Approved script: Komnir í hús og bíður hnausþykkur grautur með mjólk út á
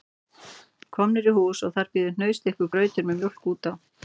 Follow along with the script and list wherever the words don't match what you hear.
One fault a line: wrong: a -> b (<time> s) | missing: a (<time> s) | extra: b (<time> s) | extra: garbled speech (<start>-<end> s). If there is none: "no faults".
extra: þar (1.8 s)